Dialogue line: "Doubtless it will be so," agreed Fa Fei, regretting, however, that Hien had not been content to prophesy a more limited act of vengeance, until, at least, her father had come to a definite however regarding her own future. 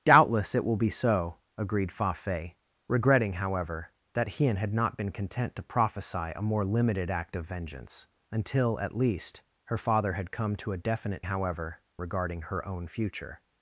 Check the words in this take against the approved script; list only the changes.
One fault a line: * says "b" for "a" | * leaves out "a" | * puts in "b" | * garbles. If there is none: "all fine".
all fine